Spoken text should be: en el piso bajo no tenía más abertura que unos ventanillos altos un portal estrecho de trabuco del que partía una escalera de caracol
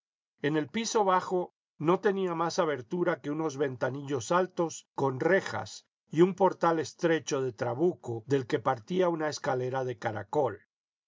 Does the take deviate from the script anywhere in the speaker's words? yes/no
yes